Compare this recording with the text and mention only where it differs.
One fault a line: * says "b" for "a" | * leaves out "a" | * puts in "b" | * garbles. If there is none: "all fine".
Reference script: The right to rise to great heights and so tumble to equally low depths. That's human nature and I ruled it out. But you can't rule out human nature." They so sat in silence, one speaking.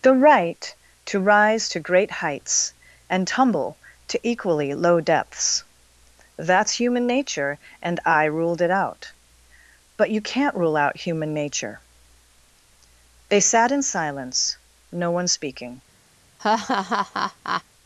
* leaves out "so"
* leaves out "so"
* puts in "no"